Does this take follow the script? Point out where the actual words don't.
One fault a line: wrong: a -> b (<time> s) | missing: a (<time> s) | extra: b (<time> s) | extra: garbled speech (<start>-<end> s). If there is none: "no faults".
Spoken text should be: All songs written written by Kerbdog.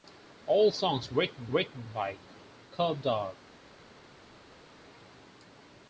no faults